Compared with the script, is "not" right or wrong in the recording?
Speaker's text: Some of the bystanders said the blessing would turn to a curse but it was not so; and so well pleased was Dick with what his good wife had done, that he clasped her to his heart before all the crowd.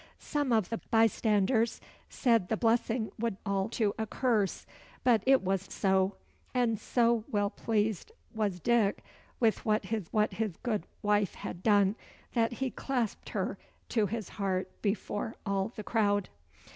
wrong